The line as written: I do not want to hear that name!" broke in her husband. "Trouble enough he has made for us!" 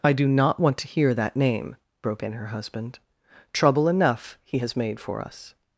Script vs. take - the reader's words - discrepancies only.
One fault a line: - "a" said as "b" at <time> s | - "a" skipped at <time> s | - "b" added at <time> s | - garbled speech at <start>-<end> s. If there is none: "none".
none